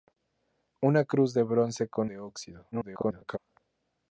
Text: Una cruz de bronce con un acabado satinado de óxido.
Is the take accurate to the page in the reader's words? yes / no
no